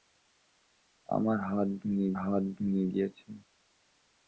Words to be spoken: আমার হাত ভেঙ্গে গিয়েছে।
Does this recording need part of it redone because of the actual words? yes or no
yes